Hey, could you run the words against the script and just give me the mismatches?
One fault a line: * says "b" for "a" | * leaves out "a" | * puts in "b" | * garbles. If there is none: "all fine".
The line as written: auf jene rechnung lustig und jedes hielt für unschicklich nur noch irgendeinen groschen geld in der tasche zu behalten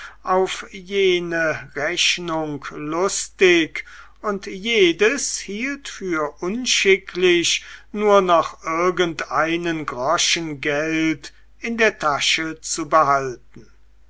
all fine